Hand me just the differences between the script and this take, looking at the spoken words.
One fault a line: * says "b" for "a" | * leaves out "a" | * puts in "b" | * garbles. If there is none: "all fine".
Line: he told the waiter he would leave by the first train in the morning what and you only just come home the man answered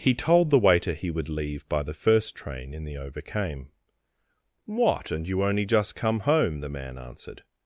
* says "overcame" for "morning"